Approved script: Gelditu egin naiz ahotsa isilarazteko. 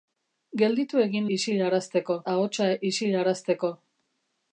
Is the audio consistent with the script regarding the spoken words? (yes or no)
no